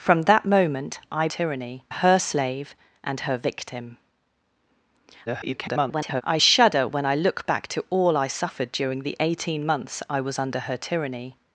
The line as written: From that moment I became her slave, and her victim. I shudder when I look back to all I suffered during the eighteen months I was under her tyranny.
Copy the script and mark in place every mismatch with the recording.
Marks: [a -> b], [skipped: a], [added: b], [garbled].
From that moment I [became -> tyranny] her slave, and her victim. [garbled] I shudder when I look back to all I suffered during the eighteen months I was under her tyranny.